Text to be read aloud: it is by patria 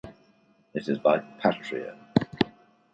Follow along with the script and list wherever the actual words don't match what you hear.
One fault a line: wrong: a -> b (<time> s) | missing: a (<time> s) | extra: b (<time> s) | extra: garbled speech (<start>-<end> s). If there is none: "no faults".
no faults